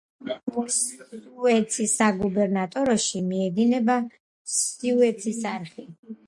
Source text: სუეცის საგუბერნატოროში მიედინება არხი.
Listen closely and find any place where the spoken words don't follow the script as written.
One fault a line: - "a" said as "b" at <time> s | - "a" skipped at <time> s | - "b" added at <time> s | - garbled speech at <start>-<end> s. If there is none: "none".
- "სუეცის" added at 4.6 s